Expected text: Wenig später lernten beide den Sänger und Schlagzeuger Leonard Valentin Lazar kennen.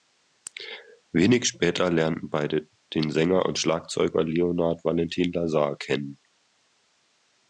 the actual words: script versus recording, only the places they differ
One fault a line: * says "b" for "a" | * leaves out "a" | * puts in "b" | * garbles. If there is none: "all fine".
all fine